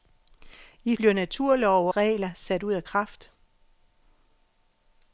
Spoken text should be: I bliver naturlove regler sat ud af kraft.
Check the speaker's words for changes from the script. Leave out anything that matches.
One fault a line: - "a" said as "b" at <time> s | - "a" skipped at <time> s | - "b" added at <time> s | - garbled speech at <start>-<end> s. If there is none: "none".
none